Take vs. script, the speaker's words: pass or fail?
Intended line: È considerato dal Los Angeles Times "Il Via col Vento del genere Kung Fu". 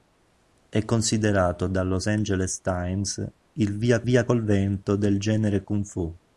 fail